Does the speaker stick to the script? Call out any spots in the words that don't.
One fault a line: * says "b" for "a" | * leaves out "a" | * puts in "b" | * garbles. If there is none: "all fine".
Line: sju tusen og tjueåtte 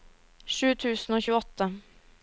all fine